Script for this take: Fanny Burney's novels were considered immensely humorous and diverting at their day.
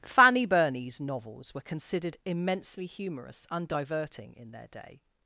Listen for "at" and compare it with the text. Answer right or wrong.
wrong